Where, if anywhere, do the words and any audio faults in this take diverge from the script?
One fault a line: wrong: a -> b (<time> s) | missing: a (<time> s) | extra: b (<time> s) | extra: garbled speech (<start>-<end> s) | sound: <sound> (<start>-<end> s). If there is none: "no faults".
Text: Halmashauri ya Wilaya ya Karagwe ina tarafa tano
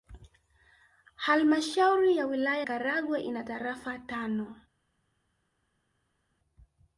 missing: ya (2.6 s)